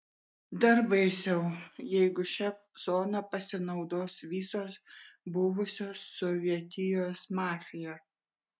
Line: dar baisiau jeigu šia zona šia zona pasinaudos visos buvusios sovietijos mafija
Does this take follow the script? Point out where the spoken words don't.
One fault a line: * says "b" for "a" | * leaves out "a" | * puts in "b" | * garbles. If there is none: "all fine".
* leaves out "šia zona"